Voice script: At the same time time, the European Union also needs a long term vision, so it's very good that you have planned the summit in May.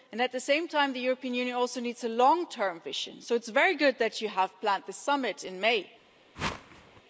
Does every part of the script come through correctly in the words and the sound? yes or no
no